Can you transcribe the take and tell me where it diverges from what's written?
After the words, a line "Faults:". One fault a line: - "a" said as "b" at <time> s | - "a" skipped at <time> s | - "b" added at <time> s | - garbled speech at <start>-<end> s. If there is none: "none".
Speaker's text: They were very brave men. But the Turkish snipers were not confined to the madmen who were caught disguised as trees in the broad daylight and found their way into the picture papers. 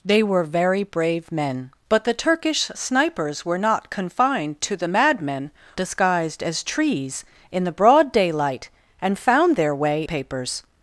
They were very brave men. But the Turkish snipers were not confined to the madmen disguised as trees in the broad daylight and found their way papers.
Faults:
- "who were caught" skipped at 5.5 s
- "into the picture" skipped at 10.1 s